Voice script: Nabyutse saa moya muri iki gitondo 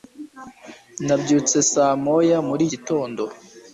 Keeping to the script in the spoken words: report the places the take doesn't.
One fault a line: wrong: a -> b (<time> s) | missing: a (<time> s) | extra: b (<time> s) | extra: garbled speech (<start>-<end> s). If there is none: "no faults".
missing: iki (2.6 s)